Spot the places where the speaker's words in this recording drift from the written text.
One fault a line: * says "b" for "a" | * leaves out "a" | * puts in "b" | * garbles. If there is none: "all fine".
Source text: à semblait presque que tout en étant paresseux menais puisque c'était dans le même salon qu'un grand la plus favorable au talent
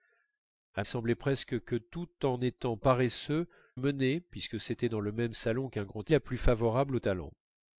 all fine